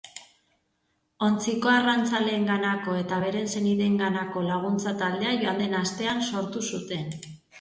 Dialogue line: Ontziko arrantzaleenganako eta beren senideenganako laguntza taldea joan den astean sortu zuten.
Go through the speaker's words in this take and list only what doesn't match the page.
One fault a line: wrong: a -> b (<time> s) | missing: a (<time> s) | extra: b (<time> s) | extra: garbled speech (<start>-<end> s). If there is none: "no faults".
no faults